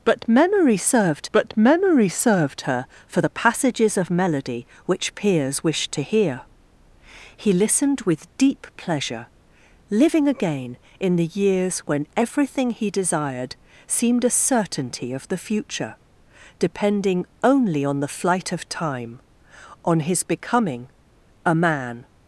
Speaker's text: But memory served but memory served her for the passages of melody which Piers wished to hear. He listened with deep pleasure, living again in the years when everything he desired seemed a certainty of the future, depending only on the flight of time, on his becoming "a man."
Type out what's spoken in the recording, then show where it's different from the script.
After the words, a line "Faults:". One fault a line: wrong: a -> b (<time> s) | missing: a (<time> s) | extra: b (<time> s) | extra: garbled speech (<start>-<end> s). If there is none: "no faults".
But memory served but memory served her for the passages of melody which Piers wished to hear. He listened with deep pleasure, living again in the years when everything he desired seemed a certainty of the future, depending only on the flight of time, on his becoming "a man."
Faults:
no faults